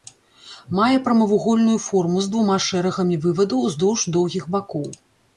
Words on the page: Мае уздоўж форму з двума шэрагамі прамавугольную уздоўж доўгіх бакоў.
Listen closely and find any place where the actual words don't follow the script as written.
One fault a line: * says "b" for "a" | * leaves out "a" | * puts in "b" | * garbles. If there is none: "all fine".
* says "прамавугольную" for "уздоўж"
* says "вывадаў" for "прамавугольную"